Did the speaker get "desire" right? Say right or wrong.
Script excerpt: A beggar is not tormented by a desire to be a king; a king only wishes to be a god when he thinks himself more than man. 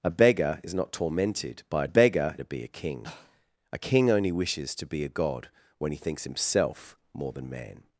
wrong